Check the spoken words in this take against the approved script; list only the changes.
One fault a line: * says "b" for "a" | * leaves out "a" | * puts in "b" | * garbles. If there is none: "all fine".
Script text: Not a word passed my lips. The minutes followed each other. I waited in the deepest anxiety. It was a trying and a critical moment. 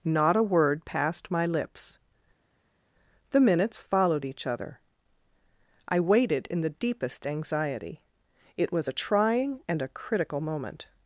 all fine